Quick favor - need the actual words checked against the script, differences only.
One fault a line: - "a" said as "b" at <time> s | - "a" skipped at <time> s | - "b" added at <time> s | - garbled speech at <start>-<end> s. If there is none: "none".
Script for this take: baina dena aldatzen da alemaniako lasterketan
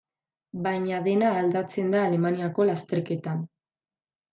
none